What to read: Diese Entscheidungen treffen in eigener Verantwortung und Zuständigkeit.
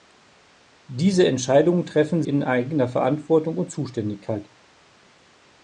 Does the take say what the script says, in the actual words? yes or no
yes